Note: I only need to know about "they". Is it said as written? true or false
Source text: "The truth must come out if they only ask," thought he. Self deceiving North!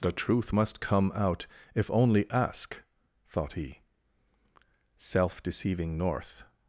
false